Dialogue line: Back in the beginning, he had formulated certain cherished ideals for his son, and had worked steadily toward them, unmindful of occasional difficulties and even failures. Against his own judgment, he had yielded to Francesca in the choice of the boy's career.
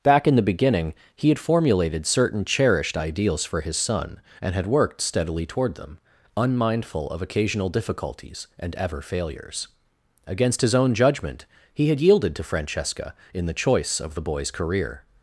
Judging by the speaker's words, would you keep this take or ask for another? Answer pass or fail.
fail